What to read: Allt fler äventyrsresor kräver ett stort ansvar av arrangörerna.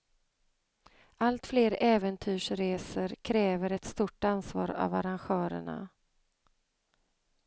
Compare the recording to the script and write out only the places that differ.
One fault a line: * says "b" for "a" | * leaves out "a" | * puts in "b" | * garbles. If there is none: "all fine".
all fine